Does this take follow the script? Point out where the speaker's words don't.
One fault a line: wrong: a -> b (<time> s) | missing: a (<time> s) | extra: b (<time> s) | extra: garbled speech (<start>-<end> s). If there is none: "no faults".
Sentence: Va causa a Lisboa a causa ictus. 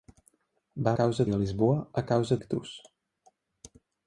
no faults